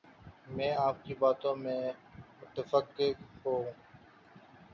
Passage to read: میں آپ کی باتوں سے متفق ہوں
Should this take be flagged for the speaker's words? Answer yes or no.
no